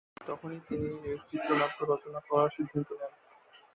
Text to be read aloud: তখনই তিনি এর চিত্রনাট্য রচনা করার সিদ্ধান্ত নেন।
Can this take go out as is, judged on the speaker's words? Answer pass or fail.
pass